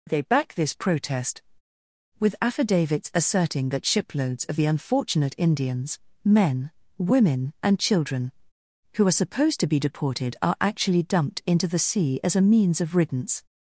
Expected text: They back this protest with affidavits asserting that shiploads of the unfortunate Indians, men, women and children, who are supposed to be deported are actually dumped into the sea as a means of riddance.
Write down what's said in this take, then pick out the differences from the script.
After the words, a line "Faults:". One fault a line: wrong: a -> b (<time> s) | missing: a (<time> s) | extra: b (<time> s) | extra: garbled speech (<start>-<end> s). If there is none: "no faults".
They back this protest with affidavits asserting that shiploads of the unfortunate Indians, men, women and children, who are supposed to be deported are actually dumped into the sea as a means of riddance.
Faults:
no faults